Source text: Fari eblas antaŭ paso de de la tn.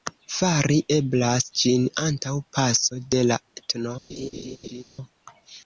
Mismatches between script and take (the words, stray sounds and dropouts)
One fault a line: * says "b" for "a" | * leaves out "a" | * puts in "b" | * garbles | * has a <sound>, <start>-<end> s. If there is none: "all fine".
* puts in "ĝin"
* leaves out "de"
* has a laugh, 4.1-4.8 s